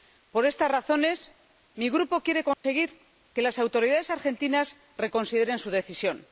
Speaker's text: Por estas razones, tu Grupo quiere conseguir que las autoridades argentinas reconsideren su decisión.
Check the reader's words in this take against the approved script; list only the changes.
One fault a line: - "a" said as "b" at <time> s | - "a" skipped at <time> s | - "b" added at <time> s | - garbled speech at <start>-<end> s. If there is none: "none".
- "tu" said as "mi" at 1.8 s